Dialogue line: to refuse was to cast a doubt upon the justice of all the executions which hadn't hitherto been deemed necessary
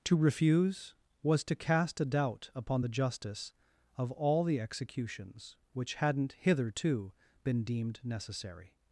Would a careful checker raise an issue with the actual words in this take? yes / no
no